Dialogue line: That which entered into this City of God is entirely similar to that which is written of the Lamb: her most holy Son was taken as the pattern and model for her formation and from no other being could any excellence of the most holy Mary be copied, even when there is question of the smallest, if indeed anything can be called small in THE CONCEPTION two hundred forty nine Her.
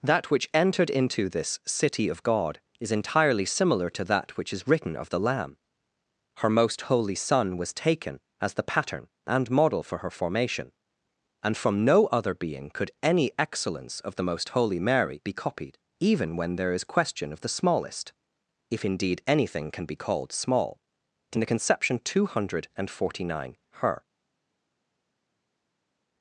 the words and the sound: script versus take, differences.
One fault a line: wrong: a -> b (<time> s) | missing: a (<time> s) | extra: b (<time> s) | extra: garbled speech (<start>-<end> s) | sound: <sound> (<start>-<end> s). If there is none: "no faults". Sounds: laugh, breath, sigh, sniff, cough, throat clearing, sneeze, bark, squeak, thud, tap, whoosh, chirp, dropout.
no faults